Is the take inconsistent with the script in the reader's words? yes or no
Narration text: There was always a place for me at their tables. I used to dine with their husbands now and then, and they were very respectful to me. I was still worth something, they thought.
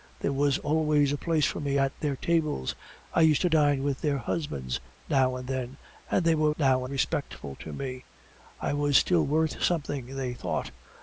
yes